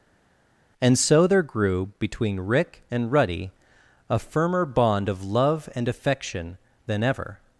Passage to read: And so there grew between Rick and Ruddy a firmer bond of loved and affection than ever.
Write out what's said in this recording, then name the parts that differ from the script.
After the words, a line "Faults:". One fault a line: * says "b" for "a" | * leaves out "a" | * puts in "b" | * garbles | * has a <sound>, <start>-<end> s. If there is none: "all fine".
And so there grew between Rick and Ruddy a firmer bond of love and affection than ever.
Faults:
* says "love" for "loved"